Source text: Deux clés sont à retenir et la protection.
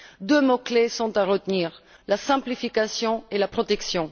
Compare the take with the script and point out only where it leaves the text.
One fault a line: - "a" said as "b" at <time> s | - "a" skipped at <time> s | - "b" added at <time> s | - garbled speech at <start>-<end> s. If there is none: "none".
- "mots" added at 0.4 s
- "la simplification" added at 2.1 s